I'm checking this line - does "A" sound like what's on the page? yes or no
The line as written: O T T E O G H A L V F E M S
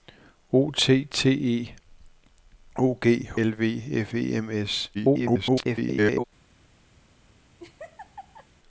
no